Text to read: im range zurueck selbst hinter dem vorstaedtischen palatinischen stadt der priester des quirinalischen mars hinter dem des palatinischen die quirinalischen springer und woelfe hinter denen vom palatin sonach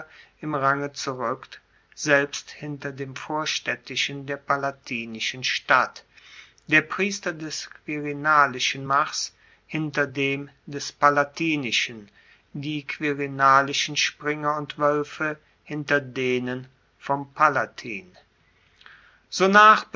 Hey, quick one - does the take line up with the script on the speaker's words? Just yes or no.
no